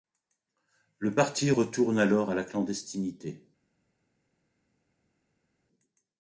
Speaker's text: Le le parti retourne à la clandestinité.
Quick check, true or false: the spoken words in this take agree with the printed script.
false